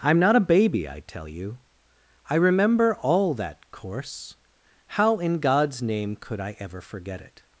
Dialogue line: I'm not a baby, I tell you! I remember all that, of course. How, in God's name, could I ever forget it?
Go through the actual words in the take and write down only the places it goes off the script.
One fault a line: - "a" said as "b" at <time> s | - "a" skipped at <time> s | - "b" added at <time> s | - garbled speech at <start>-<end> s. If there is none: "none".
- "of" skipped at 3.7 s